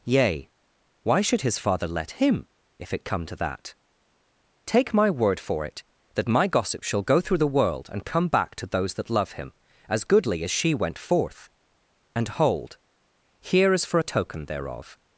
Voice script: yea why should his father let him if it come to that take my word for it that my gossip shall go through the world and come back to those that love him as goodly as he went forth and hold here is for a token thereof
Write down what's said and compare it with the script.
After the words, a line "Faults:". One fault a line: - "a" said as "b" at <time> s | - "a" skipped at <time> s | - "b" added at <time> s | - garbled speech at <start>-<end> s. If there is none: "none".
yea why should his father let him if it come to that take my word for it that my gossip shall go through the world and come back to those that love him as goodly as she went forth and hold here is for a token thereof
Faults:
- "he" said as "she" at 10.5 s